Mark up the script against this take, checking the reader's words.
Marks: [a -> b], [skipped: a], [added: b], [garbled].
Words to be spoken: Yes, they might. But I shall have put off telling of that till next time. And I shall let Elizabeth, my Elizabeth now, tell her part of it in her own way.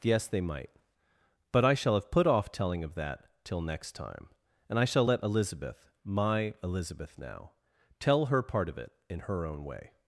Yes, they might. But I shall have put off telling of that till next time. And I shall let Elizabeth, my Elizabeth now, tell her part of it in her own way.